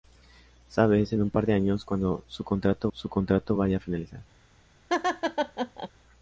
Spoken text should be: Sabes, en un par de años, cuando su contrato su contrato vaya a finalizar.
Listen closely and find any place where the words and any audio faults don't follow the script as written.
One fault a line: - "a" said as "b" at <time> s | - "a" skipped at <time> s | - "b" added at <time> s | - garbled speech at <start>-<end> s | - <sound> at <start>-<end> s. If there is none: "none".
- laugh at 4.9-5.9 s